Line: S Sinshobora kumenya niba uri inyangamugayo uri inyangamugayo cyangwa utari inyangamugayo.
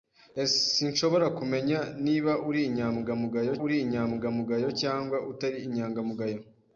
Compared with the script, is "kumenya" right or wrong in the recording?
right